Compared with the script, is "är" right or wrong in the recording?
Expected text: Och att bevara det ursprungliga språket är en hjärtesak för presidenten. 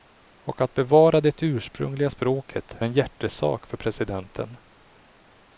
wrong